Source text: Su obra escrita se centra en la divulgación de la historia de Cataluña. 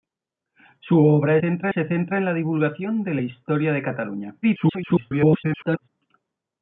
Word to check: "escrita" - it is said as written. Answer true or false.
false